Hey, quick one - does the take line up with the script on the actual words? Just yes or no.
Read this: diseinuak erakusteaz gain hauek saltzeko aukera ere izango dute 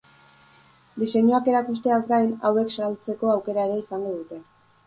yes